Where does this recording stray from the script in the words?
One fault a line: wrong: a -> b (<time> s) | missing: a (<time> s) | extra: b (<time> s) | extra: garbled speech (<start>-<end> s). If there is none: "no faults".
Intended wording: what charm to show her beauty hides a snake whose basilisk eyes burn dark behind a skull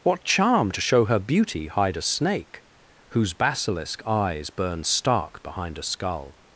wrong: hides -> hide (1.7 s)
wrong: dark -> stark (4.8 s)